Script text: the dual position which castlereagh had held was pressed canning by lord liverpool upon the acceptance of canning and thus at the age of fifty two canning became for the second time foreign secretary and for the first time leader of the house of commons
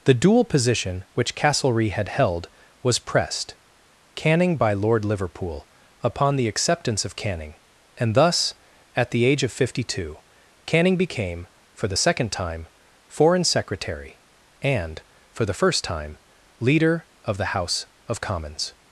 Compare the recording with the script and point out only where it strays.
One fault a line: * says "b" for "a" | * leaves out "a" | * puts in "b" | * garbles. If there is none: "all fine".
all fine